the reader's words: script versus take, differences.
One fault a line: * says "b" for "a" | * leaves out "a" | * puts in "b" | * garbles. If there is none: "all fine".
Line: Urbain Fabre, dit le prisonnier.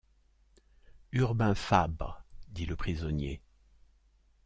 all fine